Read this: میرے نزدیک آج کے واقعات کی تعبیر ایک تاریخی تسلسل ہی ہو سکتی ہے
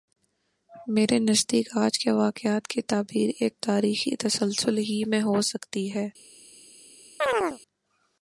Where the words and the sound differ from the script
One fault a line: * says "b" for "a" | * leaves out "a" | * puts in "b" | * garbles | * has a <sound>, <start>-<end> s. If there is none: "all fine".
* puts in "میں"
* has a chirp, 7.2-7.6 s